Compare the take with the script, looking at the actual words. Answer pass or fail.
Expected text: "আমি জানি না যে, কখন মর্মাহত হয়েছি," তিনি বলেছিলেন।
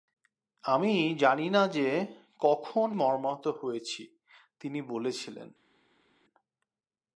pass